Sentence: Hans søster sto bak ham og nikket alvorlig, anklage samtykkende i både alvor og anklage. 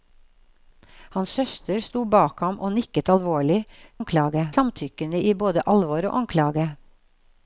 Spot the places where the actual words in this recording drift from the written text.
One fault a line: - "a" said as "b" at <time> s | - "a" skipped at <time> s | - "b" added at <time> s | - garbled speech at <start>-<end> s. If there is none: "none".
none